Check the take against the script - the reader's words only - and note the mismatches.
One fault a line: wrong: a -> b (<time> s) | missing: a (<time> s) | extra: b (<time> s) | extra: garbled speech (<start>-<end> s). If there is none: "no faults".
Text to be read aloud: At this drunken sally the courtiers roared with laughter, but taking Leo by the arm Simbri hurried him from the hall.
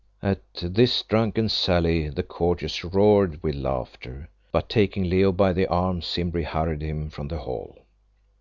no faults